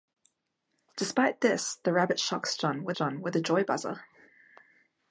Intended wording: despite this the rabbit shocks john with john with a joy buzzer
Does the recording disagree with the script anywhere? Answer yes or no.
no